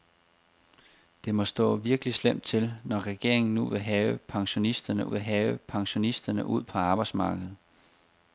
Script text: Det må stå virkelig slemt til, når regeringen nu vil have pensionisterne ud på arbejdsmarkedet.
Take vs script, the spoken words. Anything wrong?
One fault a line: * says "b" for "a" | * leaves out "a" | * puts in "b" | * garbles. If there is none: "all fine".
* puts in "vil have pensionisterne"